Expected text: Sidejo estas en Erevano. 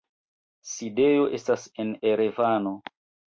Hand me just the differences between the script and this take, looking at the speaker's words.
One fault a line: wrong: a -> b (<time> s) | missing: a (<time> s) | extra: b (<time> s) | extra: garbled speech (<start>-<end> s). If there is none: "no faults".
no faults